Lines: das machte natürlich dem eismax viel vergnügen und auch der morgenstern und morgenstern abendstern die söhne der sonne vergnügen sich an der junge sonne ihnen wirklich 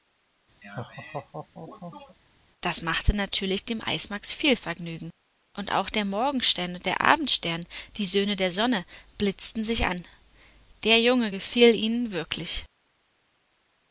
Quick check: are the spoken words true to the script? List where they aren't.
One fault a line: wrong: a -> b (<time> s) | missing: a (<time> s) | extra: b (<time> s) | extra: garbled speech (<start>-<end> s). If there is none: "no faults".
wrong: morgenstern -> der (6.9 s)
wrong: vergnügen -> blitzten (9.2 s)
wrong: sonne -> gefiel (11.3 s)